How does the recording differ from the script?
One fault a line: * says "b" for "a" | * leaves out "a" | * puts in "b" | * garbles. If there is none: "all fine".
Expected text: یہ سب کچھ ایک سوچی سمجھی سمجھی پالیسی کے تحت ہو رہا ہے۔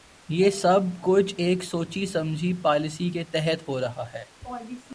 * leaves out "سمجھی"